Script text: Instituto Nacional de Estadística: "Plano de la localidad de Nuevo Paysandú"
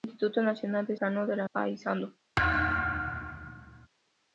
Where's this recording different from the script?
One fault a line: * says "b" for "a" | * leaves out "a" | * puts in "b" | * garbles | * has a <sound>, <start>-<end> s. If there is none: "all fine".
* leaves out "Estadística"
* leaves out "localidad de Nuevo"
* has a thud, 2.4-3.9 s